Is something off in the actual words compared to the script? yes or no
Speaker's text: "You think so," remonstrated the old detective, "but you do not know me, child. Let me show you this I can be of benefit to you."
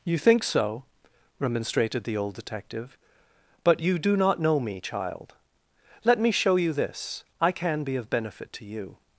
no